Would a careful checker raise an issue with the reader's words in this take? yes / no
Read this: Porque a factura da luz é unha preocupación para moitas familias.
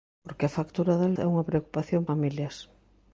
yes